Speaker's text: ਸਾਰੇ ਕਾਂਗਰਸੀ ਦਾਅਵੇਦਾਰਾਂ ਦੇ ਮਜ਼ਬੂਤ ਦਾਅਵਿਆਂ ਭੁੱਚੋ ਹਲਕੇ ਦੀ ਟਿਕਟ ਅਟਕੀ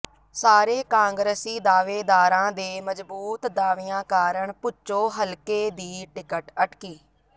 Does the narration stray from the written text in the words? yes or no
yes